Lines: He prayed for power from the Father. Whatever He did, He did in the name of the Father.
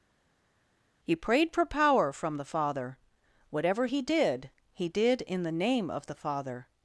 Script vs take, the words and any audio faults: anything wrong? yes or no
no